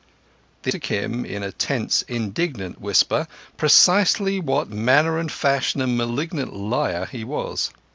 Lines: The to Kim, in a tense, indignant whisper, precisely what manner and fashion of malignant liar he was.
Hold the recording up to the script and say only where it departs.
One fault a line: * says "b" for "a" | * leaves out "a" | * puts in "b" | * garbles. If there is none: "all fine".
all fine